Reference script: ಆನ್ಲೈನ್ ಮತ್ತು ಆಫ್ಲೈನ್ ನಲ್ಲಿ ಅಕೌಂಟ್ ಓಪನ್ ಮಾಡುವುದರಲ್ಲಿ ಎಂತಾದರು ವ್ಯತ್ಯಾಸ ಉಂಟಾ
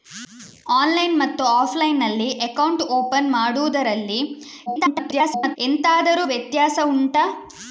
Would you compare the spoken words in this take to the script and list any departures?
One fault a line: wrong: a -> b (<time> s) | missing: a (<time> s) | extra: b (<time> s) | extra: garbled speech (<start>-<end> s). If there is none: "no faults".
extra: garbled speech (4.7-5.6 s)